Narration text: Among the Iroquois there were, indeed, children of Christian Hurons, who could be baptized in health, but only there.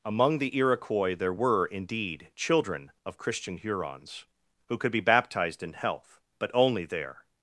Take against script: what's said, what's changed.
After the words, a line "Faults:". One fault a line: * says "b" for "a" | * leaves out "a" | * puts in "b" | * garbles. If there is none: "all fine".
Among the Iroquois there were, indeed, children of Christian Hurons, who could be baptized in health, but only there.
Faults:
all fine